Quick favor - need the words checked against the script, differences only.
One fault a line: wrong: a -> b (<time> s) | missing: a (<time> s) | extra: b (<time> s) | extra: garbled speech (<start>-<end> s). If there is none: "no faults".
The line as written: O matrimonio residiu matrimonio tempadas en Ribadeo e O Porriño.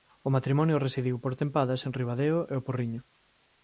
wrong: matrimonio -> por (1.2 s)